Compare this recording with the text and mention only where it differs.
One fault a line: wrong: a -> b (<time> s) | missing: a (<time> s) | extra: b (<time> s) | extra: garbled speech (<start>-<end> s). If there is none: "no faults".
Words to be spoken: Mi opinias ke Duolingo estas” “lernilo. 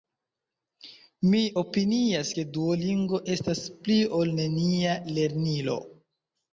extra: pli ol nenia (3.8 s)